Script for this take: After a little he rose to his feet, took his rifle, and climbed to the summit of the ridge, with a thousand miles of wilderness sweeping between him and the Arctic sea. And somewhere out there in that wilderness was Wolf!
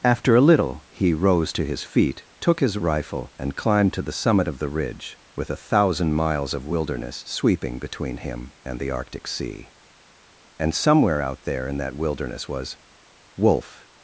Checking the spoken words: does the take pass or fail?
pass